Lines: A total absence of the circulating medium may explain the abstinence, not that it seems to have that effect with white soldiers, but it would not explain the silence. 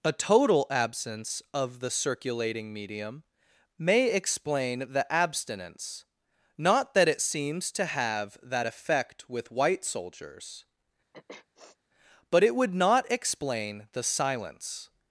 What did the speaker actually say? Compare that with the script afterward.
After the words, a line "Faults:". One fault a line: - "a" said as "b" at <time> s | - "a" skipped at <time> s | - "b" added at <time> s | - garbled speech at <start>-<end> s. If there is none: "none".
A total absence of the circulating medium may explain the abstinence, not that it seems to have that effect with white soldiers, but it would not explain the silence.
Faults:
none